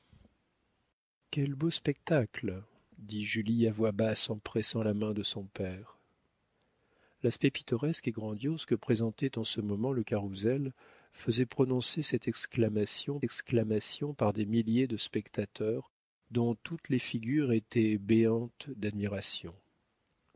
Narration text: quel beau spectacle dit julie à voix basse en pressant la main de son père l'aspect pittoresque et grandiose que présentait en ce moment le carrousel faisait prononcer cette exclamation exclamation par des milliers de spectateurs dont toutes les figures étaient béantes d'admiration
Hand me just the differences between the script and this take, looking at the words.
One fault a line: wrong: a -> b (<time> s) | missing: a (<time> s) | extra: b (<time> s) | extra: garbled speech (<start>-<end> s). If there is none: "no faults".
no faults